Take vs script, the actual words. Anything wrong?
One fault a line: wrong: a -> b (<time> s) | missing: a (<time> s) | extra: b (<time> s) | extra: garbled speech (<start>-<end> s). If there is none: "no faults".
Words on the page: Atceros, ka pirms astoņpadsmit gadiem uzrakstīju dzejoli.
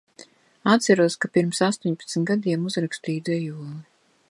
no faults